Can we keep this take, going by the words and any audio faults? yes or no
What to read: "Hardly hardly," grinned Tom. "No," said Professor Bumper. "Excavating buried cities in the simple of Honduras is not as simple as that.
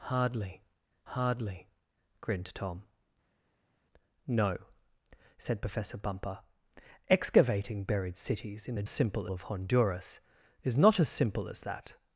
yes